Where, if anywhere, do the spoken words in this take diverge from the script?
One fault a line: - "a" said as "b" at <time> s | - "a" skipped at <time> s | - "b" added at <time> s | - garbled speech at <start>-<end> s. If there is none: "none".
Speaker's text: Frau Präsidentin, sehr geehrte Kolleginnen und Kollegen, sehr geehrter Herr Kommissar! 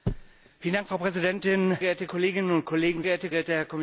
- "sehr" skipped at 1.8 s
- "sehr" said as "geehrte" at 3.0 s